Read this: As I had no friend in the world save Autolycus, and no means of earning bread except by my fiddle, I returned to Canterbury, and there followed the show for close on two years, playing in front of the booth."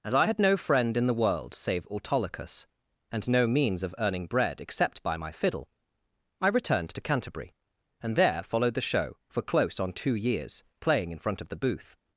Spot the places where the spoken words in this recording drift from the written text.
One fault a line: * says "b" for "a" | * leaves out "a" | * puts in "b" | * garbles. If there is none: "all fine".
all fine